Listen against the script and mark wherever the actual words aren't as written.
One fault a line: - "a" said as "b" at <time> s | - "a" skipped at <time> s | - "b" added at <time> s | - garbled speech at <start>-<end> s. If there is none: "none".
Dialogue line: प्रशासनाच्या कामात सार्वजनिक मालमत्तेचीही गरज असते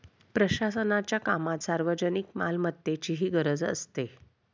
none